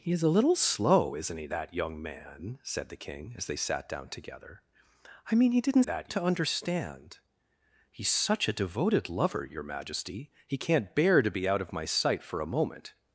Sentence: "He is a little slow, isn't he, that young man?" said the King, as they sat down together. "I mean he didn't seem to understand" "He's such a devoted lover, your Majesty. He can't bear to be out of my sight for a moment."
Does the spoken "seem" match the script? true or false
false